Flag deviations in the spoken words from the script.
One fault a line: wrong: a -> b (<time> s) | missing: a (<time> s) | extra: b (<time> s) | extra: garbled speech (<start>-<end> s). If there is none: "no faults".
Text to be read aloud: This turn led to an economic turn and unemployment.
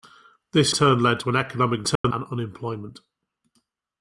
no faults